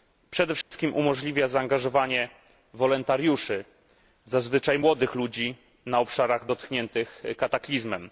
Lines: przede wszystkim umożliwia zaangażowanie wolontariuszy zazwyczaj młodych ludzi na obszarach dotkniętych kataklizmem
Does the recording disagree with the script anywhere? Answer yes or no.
no